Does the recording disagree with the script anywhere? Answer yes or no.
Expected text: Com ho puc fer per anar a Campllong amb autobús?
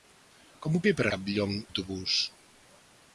yes